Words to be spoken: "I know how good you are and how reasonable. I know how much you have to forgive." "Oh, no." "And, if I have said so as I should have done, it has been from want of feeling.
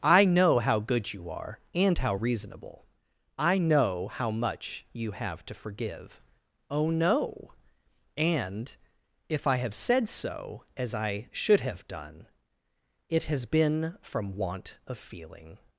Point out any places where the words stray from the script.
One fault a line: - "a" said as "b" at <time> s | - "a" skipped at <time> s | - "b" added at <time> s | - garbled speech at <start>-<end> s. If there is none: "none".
none